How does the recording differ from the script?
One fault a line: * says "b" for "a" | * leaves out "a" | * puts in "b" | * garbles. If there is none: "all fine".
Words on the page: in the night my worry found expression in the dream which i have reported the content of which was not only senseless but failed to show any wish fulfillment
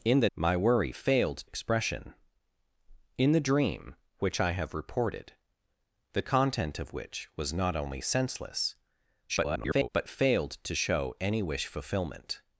* leaves out "night"
* says "failed" for "found"
* garbles